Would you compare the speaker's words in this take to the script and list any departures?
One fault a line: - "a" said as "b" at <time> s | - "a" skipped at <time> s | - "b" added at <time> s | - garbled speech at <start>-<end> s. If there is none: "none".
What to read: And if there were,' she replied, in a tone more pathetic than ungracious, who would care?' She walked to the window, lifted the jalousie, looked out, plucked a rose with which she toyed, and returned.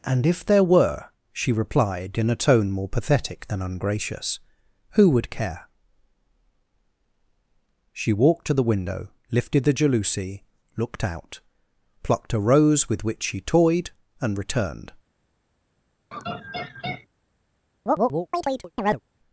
none